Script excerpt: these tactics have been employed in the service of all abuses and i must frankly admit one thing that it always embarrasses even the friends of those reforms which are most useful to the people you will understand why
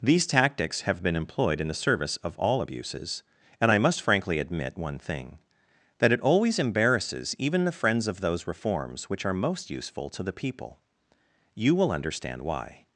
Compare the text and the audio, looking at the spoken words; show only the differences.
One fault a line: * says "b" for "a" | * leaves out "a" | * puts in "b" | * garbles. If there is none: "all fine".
all fine